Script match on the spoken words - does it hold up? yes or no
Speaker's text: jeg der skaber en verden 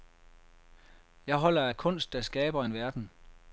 no